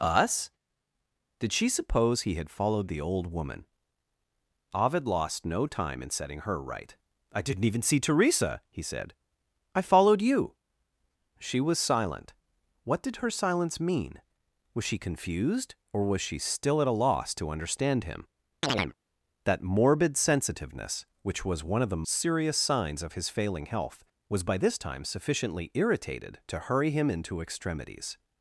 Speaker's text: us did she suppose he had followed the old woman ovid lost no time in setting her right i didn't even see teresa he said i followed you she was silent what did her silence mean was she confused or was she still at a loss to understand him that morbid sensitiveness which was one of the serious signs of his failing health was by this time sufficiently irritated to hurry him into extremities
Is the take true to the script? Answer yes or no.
yes